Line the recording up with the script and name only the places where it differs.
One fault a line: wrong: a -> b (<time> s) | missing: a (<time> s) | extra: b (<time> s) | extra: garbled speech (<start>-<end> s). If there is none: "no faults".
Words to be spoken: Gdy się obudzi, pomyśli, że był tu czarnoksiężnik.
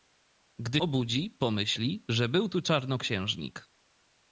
missing: się (0.8 s)